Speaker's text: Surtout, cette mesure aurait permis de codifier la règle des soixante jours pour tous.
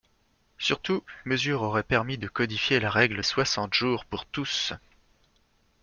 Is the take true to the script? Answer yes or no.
no